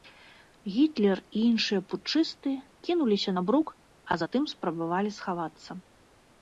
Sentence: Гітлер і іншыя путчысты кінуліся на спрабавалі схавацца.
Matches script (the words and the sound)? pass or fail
fail